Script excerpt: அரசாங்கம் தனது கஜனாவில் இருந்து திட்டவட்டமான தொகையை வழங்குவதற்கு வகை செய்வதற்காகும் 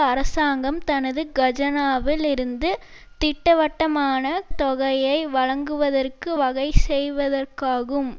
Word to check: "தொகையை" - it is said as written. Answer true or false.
true